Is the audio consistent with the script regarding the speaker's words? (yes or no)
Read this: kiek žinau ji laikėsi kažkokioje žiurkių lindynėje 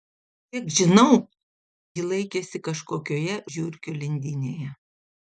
yes